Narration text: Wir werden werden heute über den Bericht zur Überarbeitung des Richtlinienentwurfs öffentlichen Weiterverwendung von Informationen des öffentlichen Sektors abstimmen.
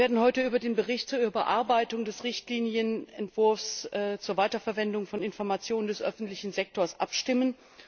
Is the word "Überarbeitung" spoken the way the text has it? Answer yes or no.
yes